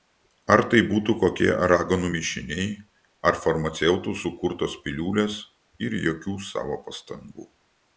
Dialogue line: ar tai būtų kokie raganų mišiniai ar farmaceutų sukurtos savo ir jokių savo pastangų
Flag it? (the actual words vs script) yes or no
yes